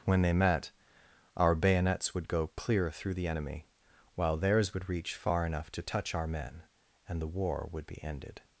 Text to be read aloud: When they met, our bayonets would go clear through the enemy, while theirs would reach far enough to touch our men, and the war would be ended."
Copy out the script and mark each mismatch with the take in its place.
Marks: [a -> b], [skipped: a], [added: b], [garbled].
When they met, our bayonets would go clear through the enemy, while theirs would reach far enough to touch our men, and the war would be ended."